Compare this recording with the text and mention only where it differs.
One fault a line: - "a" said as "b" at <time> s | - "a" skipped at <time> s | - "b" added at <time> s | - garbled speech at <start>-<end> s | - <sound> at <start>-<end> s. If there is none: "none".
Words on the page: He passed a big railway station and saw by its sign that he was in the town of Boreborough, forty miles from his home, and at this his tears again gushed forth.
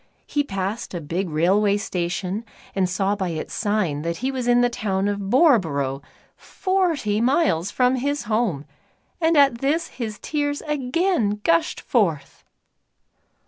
none